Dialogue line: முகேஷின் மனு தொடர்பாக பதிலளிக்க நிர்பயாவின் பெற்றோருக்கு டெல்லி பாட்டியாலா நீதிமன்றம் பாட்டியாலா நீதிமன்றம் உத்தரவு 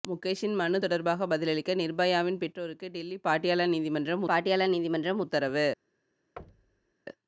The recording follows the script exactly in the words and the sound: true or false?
false